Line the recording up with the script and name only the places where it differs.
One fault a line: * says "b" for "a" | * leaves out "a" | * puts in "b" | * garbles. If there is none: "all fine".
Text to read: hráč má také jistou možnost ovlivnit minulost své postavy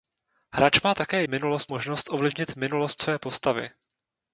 * says "minulost" for "jistou"